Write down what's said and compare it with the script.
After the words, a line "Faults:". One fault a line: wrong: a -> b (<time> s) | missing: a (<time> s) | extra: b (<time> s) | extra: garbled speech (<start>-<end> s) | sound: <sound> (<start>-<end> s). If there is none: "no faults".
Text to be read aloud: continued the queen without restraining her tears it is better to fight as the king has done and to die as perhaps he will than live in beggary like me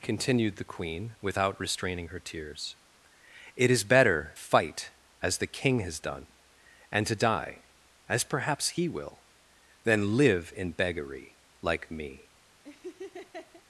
continued the queen without restraining her tears it is better fight as the king has done and to die as perhaps he will than live in beggary like me
Faults:
missing: to (4.3 s)
sound: laugh (12.6-13.6 s)